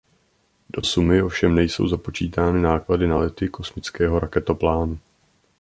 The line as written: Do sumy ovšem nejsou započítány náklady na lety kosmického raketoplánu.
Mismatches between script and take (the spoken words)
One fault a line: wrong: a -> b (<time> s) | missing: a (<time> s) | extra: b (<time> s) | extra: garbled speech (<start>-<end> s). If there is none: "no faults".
no faults